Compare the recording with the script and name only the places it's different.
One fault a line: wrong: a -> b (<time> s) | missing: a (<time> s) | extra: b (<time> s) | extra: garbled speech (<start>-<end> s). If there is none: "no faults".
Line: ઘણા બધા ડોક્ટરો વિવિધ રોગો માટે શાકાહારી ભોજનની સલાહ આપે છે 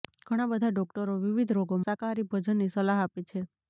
missing: માટે (1.8 s)